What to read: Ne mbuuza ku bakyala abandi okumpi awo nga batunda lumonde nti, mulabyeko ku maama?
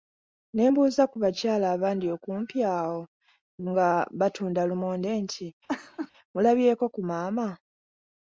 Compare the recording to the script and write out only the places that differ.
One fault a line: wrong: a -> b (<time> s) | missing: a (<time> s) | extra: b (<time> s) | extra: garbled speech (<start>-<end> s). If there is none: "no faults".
no faults